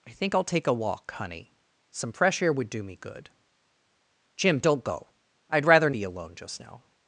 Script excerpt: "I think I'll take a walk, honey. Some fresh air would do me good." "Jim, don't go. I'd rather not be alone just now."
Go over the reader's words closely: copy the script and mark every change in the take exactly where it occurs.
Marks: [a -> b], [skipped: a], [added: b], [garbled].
"I think I'll take a walk, honey. Some fresh air would do me good." "Jim, don't go. I'd rather [skipped: not] be alone just now."